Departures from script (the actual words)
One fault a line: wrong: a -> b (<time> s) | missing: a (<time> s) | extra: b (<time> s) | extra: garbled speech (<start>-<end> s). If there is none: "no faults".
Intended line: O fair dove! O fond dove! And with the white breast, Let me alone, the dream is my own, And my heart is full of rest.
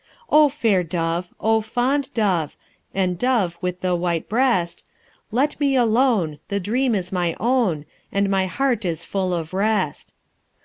extra: dove (3.2 s)